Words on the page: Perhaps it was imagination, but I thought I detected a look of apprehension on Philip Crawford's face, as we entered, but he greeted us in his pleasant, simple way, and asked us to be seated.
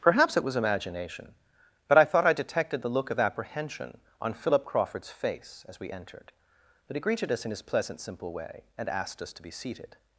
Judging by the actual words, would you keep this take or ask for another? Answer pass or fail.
fail